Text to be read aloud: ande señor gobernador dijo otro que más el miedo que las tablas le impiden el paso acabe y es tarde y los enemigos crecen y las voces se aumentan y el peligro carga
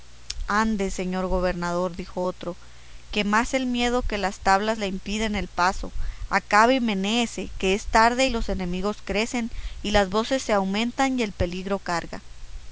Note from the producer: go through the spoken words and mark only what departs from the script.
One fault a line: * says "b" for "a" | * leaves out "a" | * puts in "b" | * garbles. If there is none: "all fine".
* puts in "menéese que"